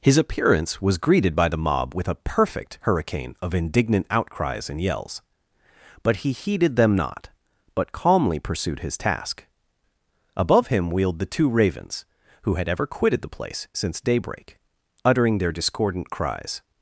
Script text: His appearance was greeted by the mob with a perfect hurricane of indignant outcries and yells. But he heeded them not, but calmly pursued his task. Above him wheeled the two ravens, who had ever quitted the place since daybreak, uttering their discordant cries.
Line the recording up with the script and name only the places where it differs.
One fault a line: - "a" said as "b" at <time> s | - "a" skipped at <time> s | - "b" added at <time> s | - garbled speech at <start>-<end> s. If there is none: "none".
none